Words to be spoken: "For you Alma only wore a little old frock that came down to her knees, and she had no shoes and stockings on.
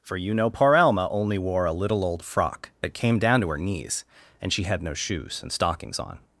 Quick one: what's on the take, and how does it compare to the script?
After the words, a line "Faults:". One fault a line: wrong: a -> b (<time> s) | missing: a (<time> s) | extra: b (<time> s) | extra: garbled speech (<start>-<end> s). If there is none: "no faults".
"For you know poor Alma only wore a little old frock that came down to her knees, and she had no shoes and stockings on.
Faults:
extra: know poor (0.3 s)